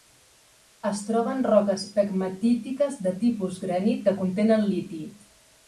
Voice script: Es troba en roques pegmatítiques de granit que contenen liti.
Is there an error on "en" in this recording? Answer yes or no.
no